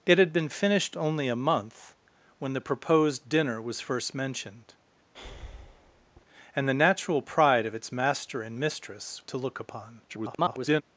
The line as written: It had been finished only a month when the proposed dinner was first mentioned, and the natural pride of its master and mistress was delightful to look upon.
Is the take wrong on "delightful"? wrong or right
wrong